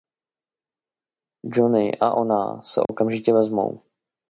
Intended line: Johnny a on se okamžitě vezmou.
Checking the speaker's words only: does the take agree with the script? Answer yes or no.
no